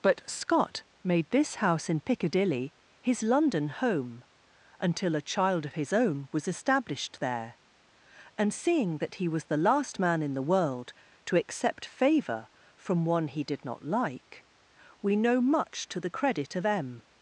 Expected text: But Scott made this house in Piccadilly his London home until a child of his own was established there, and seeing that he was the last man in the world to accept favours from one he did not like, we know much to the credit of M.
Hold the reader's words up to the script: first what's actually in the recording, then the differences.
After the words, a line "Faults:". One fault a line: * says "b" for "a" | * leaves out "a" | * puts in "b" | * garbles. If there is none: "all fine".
But Scott made this house in Piccadilly his London home until a child of his own was established there, and seeing that he was the last man in the world to accept favour from one he did not like, we know much to the credit of M.
Faults:
* says "favour" for "favours"